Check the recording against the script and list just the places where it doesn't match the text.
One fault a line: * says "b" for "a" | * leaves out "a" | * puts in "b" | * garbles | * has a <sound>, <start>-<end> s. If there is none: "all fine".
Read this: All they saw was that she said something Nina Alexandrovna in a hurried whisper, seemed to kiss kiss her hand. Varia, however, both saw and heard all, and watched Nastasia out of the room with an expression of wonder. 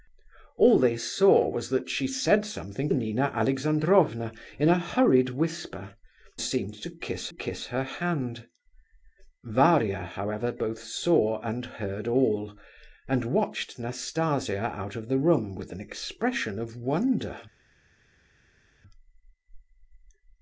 all fine